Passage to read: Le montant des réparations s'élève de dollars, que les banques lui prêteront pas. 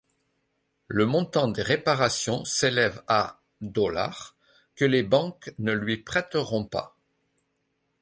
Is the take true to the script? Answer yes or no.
no